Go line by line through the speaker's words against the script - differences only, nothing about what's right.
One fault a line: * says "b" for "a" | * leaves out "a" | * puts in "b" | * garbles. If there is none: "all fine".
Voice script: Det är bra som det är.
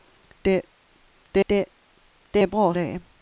* puts in "det"
* leaves out "som"